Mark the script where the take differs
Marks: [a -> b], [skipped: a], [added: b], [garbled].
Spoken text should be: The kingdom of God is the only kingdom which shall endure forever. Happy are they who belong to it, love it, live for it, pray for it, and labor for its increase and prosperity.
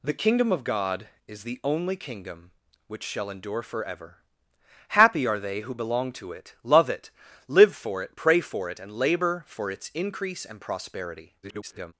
The kingdom of God is the only kingdom which shall endure forever. Happy are they who belong to it, love it, live for it, pray for it, and labor for its increase and prosperity. [garbled]